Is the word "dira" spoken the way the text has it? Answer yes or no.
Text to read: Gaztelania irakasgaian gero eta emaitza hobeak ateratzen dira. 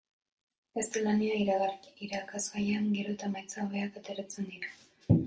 yes